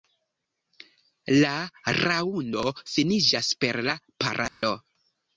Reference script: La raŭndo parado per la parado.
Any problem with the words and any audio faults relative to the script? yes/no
yes